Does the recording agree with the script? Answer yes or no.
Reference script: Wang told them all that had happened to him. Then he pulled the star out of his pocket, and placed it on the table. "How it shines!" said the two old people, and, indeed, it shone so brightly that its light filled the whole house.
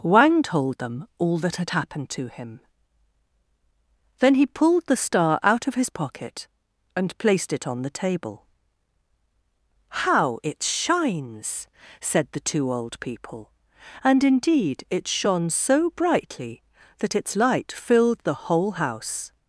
yes